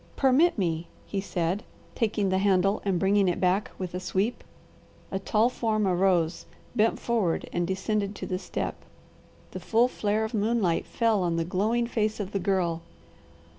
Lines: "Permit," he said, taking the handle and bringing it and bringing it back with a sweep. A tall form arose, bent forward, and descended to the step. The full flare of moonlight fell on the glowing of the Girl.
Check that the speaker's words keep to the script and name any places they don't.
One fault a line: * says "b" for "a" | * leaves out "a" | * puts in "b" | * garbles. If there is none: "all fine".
* puts in "me"
* leaves out "and bringing it"
* puts in "face"